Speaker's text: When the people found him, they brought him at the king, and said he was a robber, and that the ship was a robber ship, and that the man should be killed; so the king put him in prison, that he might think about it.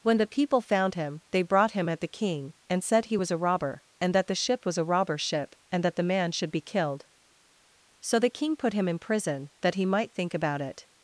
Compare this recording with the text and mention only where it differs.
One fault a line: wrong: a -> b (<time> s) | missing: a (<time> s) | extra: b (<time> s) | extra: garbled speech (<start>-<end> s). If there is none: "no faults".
no faults